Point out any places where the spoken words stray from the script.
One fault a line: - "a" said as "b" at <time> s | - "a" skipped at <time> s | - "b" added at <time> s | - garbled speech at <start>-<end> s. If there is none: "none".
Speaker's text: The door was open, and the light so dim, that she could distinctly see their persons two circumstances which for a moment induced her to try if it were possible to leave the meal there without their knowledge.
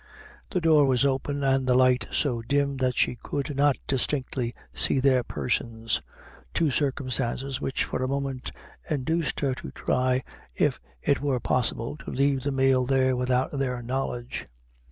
- "not" added at 3.5 s